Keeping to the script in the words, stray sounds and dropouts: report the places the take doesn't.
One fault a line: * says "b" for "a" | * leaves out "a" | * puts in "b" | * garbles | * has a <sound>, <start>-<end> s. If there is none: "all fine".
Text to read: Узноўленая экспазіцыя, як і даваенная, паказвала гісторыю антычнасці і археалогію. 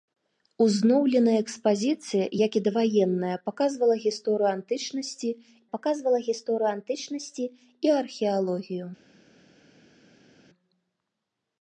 * puts in "паказвала гісторыю антычнасці"